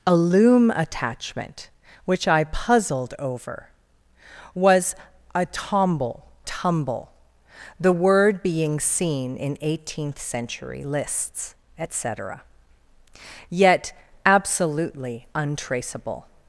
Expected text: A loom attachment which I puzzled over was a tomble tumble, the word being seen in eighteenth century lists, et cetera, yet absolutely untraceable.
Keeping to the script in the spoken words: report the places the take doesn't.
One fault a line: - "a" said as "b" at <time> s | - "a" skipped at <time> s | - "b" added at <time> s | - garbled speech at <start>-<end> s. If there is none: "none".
none